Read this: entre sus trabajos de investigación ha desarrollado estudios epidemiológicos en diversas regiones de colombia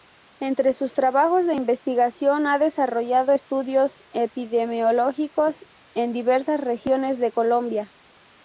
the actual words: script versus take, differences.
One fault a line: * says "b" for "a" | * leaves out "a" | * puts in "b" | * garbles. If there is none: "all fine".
all fine